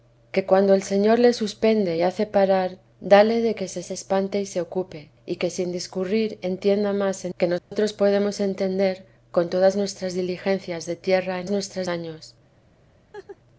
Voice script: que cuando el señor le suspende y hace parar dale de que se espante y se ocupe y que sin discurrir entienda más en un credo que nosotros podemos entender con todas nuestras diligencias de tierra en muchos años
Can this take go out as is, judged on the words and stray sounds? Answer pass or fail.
fail